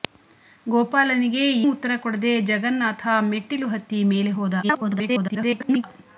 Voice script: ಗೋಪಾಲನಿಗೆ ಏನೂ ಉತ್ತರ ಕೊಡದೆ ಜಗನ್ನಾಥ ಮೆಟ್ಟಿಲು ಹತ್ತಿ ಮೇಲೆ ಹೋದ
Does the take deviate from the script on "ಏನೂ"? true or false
true